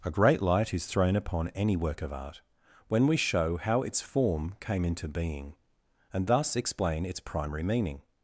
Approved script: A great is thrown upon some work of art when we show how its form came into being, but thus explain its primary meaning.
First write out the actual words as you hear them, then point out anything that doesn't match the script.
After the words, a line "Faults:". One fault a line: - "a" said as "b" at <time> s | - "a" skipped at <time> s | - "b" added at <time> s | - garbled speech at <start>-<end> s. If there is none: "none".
A great light is thrown upon any work of art when we show how its form came into being, and thus explain its primary meaning.
Faults:
- "light" added at 0.4 s
- "some" said as "any" at 1.5 s
- "but" said as "and" at 6.1 s